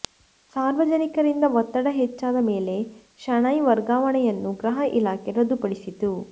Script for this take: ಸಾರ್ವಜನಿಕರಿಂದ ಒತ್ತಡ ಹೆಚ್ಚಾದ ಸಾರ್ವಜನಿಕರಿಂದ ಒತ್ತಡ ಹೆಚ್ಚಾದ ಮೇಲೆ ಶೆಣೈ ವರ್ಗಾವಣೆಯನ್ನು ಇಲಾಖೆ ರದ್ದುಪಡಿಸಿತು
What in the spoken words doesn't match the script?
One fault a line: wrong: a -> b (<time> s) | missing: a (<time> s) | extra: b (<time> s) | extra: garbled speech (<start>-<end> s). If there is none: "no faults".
missing: ಸಾರ್ವಜನಿಕರಿಂದ ಒತ್ತಡ ಹೆಚ್ಚಾದ (2.4 s)
extra: ಗೃಹ (4.6 s)